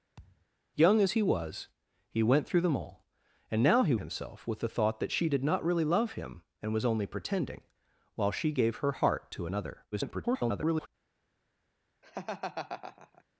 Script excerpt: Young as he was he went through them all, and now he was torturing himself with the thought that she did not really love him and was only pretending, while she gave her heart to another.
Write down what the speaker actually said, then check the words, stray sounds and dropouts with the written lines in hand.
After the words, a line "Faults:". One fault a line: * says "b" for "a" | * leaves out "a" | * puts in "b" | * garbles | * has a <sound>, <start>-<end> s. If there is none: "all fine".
Young as he was he went through them all, and now he himself with the thought that she did not really love him and was only pretending, while she gave her heart to another. [garbled]
Faults:
* has a thud, 0.2-0.5 s
* leaves out "was torturing"
* garbles
* has a laugh, 12.0-13.2 s